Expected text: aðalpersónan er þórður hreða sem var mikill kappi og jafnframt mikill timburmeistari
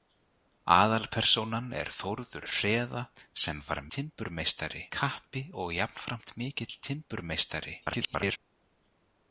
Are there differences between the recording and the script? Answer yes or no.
yes